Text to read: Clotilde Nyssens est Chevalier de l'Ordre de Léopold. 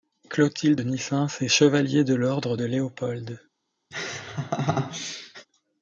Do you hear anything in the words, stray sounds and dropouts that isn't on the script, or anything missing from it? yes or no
yes